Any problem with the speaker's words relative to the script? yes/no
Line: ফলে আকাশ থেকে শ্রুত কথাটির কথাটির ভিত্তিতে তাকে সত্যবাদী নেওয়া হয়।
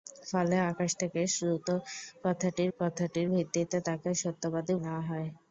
no